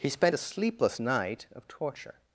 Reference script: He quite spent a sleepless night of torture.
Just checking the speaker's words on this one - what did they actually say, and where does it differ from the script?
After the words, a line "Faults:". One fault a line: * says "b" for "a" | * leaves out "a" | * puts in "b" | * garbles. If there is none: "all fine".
He spent a sleepless night of torture.
Faults:
* leaves out "quite"